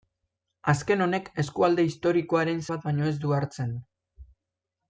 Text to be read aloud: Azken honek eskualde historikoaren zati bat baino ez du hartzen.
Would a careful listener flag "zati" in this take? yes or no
yes